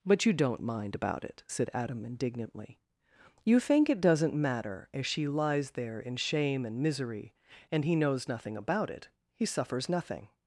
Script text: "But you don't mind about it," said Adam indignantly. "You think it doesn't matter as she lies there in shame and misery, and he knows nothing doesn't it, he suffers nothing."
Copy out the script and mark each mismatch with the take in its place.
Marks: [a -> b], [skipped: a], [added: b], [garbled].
"But you don't mind about it," said Adam indignantly. "You think it doesn't matter as she lies there in shame and misery, and he knows nothing [doesn't -> about] it, he suffers nothing."